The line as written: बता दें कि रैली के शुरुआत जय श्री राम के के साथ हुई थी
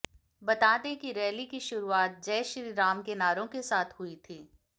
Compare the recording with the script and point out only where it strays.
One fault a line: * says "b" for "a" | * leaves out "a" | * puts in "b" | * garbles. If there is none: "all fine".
* says "की" for "के"
* puts in "नारों"